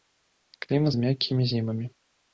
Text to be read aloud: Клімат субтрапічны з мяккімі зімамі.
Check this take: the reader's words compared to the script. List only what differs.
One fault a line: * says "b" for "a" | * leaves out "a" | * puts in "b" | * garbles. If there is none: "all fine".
* leaves out "субтрапічны"